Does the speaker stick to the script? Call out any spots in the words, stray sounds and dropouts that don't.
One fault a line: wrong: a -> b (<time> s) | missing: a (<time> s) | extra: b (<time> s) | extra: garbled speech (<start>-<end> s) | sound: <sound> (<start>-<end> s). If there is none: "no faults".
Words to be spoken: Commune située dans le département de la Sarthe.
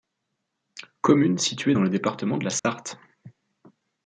sound: dropout (2.6-2.6 s)